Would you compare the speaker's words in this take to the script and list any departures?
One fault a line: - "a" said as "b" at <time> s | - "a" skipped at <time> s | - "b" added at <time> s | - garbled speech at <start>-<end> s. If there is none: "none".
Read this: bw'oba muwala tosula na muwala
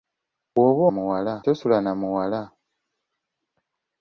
none